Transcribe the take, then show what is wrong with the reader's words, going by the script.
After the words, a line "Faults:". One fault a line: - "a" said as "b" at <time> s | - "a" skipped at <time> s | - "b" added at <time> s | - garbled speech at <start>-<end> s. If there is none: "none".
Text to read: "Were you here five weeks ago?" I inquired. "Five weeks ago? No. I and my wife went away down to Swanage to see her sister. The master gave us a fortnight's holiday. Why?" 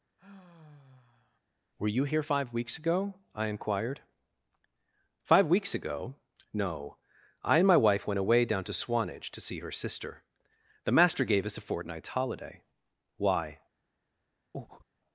"Were you here five weeks ago?" I inquired. "Five weeks ago? No. I and my wife went away down to Swanage to see her sister. The master gave us a fortnight's holiday. Why?"
Faults:
none